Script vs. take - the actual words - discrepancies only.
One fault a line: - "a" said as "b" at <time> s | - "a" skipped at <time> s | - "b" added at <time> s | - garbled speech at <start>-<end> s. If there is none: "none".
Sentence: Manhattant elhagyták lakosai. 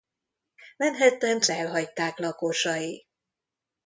none